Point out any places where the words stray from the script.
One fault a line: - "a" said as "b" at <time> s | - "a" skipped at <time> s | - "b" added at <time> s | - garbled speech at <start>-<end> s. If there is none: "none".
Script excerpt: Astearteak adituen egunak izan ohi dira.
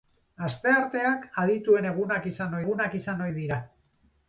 - "egunak izan" added at 2.6 s